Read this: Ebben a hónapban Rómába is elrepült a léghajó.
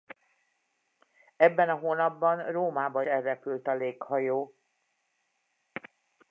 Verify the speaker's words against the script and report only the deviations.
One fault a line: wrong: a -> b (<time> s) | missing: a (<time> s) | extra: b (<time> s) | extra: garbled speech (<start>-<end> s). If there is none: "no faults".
missing: is (3.0 s)